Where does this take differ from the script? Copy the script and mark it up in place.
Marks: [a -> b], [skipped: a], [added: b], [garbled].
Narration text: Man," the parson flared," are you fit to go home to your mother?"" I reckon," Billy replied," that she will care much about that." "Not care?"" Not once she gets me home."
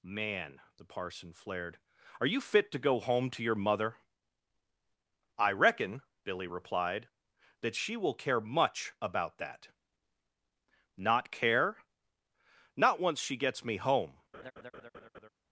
Man," the parson flared," are you fit to go home to your mother?"" I reckon," Billy replied," that she will care much about that." "Not care?"" Not once she gets me home."